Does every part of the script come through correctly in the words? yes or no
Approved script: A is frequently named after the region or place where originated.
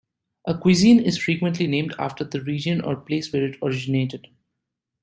no